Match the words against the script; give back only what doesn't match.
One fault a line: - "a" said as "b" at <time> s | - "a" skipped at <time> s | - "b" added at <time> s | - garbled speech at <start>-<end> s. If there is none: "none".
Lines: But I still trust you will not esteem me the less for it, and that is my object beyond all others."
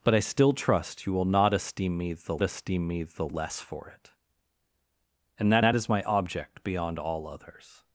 - "esteem me the" added at 2.4 s
- "that" added at 5.6 s